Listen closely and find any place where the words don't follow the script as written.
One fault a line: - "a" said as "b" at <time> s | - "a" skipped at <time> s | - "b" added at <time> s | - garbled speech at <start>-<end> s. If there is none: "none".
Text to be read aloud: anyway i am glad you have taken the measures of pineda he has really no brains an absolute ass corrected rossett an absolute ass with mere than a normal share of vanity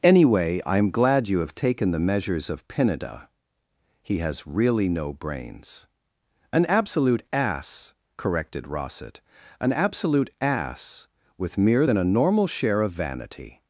none